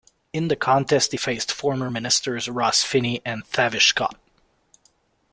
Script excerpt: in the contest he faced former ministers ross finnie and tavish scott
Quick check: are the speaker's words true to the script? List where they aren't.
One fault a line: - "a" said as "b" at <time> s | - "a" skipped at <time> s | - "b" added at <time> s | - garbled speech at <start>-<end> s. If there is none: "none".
none